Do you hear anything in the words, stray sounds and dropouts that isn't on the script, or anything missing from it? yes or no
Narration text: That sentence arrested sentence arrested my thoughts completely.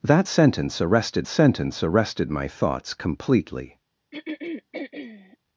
yes